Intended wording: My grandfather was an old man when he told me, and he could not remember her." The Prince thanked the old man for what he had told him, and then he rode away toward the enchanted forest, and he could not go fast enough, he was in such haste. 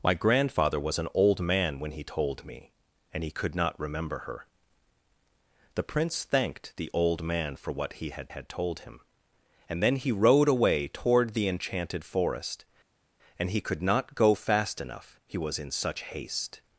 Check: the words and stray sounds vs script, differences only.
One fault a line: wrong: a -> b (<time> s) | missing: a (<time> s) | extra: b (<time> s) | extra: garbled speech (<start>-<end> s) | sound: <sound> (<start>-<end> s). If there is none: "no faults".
extra: had (8.3 s)